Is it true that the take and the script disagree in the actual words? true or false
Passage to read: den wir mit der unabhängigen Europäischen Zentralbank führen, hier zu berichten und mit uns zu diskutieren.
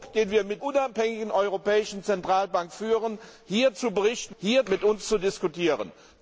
true